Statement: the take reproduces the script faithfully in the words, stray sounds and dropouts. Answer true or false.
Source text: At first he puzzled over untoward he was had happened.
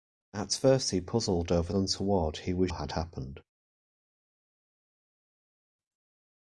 true